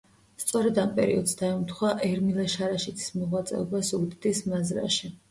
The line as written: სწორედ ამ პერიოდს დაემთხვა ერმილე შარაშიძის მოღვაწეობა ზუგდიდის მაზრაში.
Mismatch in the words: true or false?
false